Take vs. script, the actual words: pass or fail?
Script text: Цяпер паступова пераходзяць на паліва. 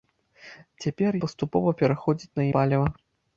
pass